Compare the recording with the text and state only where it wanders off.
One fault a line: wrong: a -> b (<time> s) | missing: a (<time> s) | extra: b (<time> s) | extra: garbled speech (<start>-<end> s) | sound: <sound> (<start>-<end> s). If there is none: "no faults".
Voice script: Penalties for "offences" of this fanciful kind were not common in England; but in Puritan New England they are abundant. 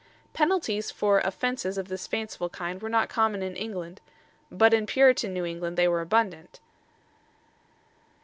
wrong: are -> were (5.9 s)